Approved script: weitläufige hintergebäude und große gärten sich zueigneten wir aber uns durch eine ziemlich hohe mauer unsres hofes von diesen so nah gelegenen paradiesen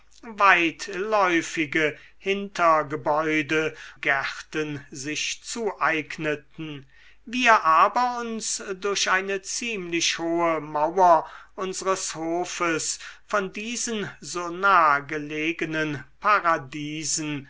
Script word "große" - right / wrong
wrong